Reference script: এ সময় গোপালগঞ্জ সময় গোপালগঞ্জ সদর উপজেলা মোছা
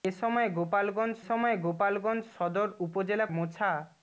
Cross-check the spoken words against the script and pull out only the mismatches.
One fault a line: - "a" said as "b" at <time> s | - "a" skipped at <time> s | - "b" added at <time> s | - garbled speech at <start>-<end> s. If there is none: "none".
none